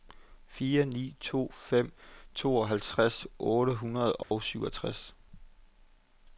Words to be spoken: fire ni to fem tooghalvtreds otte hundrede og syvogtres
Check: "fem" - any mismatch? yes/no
no